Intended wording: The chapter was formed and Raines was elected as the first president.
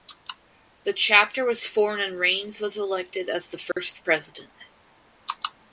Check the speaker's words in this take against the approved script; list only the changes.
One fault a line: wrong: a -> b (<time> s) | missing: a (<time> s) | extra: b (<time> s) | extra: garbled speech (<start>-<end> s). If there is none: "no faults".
no faults